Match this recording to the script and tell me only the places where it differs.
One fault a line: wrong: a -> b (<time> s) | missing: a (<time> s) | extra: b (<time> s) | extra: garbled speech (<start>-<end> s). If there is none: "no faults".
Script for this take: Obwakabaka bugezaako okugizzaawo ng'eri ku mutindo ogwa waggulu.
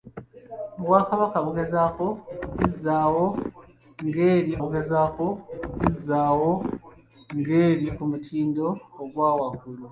extra: bugezaako okugizzaawo ng'eri (4.6 s)